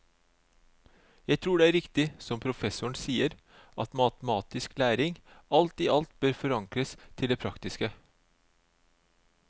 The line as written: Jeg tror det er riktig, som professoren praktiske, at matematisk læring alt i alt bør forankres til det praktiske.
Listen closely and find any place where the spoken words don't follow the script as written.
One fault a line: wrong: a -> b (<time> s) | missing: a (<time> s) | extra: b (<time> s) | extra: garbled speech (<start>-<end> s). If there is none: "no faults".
wrong: praktiske -> sier (3.0 s)